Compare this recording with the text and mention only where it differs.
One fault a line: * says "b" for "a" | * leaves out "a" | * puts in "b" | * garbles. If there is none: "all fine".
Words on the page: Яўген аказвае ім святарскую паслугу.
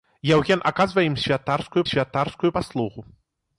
* puts in "святарскую"